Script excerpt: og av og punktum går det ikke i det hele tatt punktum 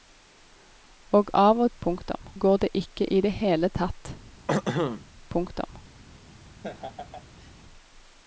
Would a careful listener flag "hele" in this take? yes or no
no